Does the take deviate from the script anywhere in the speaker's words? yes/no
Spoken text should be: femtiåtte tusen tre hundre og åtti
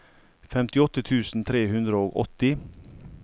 no